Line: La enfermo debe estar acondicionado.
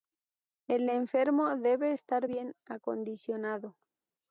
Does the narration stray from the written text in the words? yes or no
yes